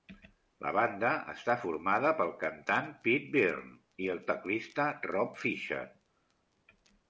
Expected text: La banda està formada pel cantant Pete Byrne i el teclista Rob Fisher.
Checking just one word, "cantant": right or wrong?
right